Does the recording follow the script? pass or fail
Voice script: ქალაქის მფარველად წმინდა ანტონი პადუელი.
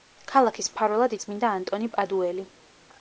pass